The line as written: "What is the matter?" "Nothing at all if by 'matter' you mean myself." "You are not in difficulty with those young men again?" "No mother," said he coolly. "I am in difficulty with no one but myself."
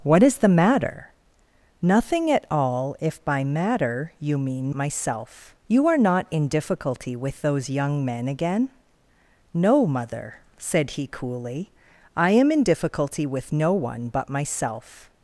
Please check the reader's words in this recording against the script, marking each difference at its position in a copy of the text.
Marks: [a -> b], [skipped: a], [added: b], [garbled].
"What is the matter?" "Nothing at all if by 'matter' you mean myself." "You are not in difficulty with those young men again?" "No mother," said he coolly. "I am in difficulty with no one but myself."